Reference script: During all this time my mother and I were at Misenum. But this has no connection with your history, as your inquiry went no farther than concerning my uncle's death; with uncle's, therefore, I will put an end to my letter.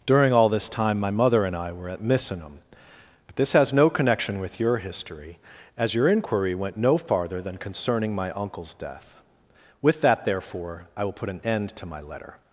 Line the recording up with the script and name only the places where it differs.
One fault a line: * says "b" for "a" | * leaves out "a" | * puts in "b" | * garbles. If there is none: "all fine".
* says "that" for "uncle's"